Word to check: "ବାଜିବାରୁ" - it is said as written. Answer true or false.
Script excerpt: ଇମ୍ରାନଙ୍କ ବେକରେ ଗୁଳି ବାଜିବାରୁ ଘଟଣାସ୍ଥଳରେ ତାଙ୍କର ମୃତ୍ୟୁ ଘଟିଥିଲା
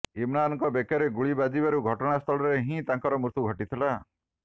true